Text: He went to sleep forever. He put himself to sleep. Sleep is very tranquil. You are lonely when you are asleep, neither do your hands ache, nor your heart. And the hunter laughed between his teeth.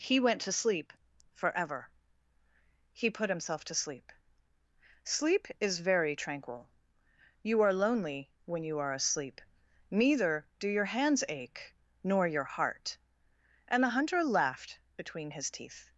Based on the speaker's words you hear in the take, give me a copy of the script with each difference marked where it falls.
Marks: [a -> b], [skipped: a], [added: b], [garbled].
He went to sleep forever. He put himself to sleep. Sleep is very tranquil. You are lonely when you are asleep, neither do your hands ache, nor your heart. And the hunter laughed between his teeth.